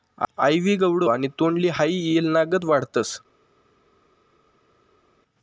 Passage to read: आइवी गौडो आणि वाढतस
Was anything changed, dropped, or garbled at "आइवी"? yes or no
no